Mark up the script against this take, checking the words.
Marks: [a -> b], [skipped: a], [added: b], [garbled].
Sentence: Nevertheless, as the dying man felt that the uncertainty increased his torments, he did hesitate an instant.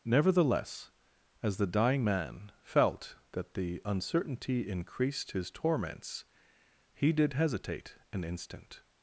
Nevertheless, as the dying man felt that the uncertainty increased his torments, he did hesitate an instant.